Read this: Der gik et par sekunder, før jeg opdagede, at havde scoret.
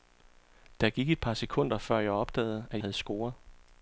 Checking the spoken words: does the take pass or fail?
pass